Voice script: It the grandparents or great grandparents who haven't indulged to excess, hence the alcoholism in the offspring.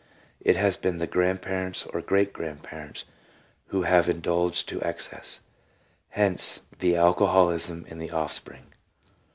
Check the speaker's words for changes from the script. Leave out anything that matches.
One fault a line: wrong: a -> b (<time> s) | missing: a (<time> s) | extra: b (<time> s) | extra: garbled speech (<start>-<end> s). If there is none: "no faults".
extra: has been (0.6 s)
wrong: haven't -> have (3.8 s)